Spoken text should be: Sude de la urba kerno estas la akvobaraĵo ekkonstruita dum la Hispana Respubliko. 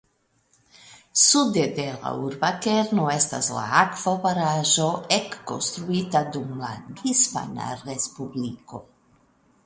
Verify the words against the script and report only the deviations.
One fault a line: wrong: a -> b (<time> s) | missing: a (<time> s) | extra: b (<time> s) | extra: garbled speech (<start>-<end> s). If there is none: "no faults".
no faults